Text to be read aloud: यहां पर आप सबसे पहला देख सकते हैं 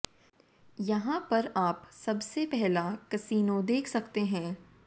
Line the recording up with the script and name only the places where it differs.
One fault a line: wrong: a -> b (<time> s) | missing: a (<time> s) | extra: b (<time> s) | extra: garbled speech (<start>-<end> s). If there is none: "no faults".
extra: कसिनो (3.1 s)